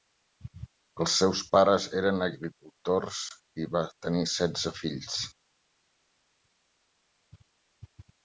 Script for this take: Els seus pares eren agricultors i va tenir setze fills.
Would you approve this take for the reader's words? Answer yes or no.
yes